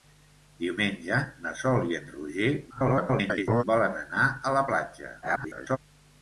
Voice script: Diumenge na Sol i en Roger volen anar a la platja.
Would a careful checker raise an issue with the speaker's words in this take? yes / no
yes